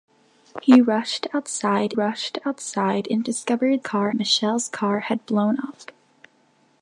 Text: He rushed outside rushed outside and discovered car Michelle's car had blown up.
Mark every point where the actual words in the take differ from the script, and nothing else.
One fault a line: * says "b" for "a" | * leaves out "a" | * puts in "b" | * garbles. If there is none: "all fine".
all fine